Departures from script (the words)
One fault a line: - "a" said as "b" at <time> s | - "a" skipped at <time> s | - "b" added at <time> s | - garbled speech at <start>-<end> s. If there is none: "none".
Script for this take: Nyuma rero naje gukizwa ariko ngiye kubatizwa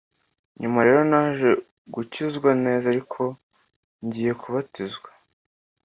- "neza" added at 2.7 s